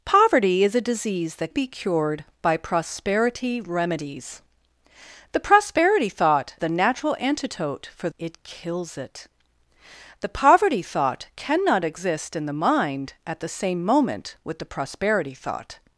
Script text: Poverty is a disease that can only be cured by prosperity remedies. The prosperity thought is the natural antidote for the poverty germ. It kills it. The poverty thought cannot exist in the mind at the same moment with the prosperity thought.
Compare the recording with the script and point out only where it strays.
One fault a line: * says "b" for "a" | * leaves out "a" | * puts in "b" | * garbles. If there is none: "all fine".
* leaves out "can only"
* leaves out "is"
* leaves out "the poverty germ"